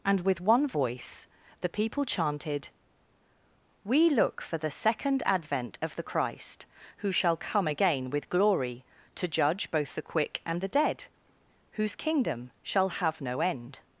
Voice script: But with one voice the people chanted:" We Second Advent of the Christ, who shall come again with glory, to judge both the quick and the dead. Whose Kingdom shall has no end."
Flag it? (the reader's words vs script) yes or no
yes